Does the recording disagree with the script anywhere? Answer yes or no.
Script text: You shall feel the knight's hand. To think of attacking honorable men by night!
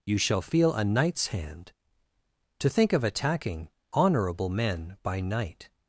yes